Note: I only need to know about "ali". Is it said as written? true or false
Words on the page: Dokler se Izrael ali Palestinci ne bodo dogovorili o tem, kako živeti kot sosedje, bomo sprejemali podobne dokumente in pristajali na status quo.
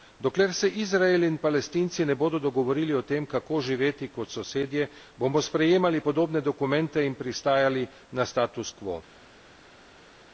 false